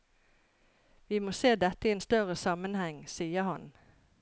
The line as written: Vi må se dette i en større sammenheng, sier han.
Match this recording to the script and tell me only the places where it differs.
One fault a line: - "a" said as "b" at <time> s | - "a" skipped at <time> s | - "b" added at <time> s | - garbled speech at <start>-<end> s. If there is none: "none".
none